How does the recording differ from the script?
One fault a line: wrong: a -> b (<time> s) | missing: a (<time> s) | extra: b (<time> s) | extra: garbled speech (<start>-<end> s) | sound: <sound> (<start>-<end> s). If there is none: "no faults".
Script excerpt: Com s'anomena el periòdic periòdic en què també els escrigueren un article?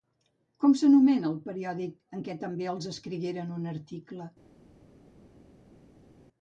missing: periòdic (2.0 s)